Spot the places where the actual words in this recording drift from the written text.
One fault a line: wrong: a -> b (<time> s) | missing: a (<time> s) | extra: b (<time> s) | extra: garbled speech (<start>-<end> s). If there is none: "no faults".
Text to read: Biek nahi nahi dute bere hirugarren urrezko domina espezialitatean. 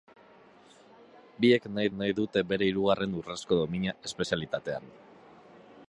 no faults